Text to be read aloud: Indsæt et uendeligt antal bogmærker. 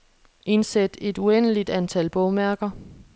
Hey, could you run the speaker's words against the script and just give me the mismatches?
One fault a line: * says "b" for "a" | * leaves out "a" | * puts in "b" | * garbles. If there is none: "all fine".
all fine